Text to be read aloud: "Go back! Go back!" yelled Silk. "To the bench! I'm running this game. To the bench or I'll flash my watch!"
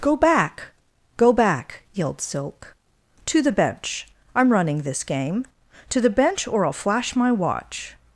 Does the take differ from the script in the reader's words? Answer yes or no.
no